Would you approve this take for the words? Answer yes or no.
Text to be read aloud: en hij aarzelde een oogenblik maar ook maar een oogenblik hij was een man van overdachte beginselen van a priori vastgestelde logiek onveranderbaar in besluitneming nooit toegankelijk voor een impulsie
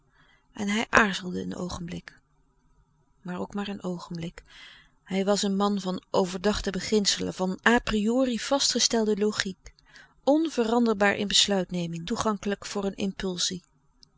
no